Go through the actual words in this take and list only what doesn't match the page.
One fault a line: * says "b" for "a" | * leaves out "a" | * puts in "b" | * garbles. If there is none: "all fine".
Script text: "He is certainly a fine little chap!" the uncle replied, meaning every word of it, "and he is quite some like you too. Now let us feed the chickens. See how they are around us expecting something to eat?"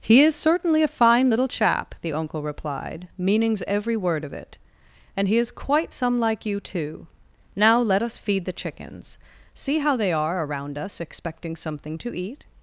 * says "meanings" for "meaning"